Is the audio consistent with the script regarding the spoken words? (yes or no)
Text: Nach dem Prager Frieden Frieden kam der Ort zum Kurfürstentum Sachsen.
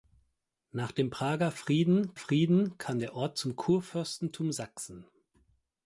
yes